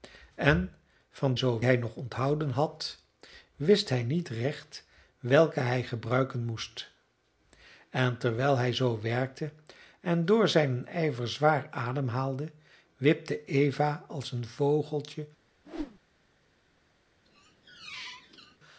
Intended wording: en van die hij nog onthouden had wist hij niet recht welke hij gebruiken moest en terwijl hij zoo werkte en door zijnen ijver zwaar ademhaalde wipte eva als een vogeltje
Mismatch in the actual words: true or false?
true